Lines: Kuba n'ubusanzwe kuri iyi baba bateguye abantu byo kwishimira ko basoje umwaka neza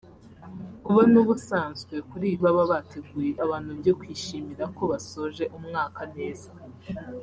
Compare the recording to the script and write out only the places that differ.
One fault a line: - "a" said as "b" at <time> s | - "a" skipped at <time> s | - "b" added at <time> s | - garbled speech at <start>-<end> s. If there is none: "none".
none